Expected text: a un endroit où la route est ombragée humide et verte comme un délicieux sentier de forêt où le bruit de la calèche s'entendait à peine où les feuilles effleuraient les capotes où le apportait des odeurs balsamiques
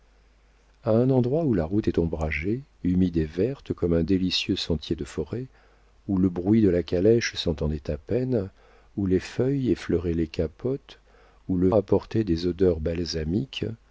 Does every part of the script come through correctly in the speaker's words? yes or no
yes